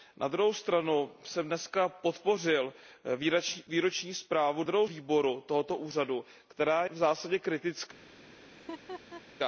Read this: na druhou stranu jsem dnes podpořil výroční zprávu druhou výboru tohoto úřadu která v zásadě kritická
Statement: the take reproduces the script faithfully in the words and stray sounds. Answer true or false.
false